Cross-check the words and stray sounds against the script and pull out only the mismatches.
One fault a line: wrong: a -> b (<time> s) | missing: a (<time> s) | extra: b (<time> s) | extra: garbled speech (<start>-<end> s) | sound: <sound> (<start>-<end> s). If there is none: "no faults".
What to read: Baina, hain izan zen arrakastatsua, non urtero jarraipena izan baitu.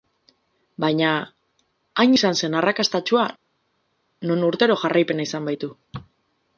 no faults